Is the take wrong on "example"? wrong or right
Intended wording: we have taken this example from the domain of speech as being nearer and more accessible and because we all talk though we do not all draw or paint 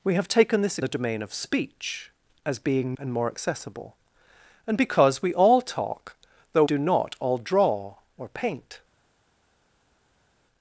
wrong